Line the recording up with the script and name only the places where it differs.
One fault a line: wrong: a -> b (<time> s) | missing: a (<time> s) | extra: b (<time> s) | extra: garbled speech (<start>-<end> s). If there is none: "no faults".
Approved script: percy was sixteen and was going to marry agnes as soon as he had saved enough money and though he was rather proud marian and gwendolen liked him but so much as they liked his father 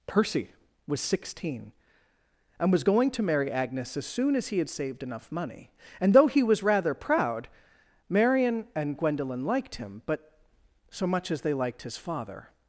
no faults